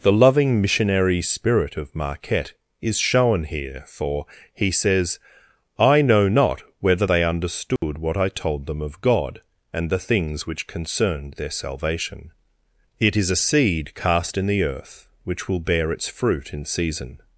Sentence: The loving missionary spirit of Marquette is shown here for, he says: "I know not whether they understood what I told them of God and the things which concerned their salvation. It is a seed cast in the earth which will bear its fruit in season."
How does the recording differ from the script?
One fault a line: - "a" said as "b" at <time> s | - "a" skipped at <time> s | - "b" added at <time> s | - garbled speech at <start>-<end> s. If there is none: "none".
none